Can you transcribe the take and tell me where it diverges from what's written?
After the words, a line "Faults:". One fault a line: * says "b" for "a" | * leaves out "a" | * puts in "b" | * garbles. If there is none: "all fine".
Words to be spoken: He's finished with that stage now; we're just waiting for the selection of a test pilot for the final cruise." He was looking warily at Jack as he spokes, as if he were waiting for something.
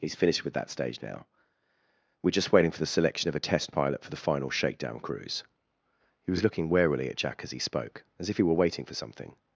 He's finished with that stage now; we're just waiting for the selection of a test pilot for the final shakedown cruise." He was looking warily at Jack as he spoke, as if he were waiting for something.
Faults:
* puts in "shakedown"
* says "spoke" for "spokes"